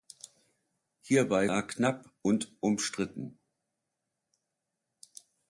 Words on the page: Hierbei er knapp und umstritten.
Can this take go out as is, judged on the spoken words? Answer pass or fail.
pass